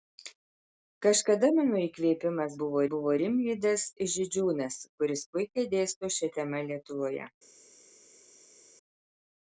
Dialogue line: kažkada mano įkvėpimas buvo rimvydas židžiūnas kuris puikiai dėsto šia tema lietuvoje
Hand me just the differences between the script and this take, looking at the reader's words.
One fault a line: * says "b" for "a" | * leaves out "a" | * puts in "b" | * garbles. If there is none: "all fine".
* puts in "buvo"